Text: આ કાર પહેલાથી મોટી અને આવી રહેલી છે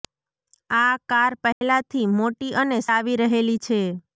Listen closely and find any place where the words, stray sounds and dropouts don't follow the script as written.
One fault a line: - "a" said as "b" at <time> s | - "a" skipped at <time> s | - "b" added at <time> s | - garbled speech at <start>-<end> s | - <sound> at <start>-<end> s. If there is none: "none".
- dropout at 1.5-1.6 s